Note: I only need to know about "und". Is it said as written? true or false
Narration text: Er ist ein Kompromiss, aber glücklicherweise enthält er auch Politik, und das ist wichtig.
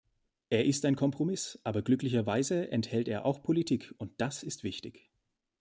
true